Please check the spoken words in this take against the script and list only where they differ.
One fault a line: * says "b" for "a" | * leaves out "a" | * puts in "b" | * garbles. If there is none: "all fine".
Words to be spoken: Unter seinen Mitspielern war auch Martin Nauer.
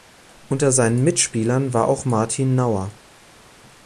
all fine